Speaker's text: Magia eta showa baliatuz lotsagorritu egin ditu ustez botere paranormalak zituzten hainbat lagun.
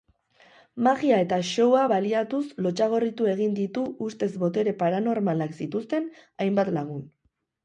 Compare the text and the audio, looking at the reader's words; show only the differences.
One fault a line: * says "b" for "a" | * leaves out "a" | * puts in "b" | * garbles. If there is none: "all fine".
all fine